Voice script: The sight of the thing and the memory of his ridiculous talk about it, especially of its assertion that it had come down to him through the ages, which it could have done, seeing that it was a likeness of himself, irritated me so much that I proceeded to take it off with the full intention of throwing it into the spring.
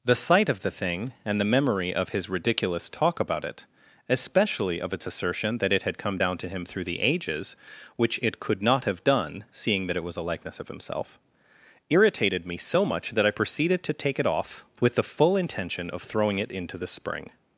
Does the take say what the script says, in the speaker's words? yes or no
no